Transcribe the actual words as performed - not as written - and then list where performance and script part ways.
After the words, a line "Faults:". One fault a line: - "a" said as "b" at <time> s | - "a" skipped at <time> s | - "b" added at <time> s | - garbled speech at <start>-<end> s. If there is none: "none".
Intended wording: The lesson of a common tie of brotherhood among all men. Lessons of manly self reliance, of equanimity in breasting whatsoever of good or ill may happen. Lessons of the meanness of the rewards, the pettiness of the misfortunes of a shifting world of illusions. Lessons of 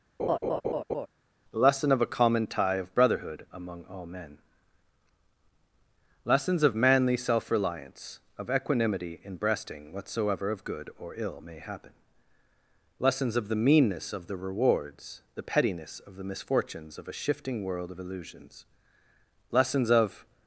The lesson of a common tie of brotherhood among all men. Lessons of manly self reliance, of equanimity in breasting whatsoever of good or ill may happen. Lessons of the meanness of the rewards, the pettiness of the misfortunes of a shifting world of illusions. Lessons of
Faults:
none